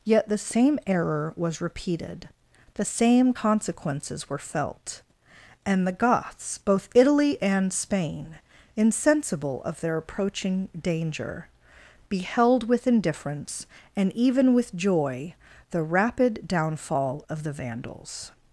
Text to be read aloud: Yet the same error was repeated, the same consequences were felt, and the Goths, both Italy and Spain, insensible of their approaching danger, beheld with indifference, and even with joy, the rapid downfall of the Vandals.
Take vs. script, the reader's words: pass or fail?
pass